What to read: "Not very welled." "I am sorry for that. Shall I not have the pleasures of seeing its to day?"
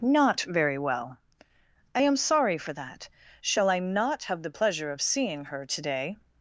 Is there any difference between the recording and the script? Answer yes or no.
yes